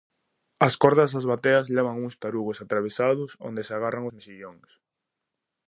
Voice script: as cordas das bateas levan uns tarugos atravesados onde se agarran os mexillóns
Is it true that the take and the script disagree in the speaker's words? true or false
false